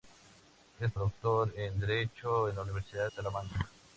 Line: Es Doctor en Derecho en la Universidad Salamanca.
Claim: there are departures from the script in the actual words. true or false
false